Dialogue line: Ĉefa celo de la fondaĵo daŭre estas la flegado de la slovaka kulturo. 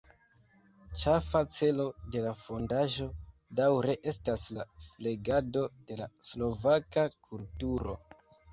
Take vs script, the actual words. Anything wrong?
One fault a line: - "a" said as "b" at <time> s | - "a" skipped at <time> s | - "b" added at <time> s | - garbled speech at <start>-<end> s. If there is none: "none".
none